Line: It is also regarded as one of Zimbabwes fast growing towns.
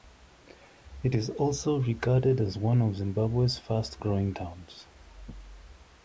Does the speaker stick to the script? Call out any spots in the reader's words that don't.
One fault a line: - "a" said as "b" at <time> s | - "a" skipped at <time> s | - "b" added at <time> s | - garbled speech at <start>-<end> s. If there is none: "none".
none